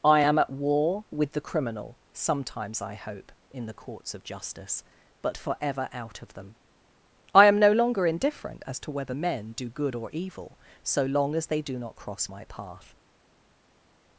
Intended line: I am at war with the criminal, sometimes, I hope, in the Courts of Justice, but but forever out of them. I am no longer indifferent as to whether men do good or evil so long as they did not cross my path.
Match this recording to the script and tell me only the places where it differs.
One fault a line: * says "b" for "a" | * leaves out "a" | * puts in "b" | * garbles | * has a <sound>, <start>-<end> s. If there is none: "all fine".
* leaves out "but"
* says "do" for "did"